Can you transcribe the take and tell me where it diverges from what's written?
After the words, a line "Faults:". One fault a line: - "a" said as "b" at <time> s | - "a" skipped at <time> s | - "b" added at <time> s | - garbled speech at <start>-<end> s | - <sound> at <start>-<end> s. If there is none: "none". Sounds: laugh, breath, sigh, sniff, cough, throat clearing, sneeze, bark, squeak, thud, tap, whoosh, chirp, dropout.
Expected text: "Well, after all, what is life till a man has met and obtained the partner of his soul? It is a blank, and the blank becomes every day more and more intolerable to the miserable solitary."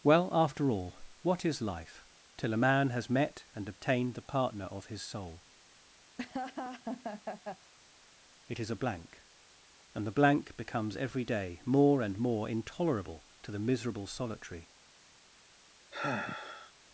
"Well, after all, what is life till a man has met and obtained the partner of his soul? It is a blank, and the blank becomes every day more and more intolerable to the miserable solitary."
Faults:
- laugh at 6.2-7.7 s
- sigh at 15.9-16.7 s